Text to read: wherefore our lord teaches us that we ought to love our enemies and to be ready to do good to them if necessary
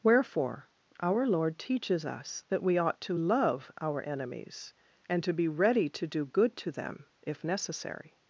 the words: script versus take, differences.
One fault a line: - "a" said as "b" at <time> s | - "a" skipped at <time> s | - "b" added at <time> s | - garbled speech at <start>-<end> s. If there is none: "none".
none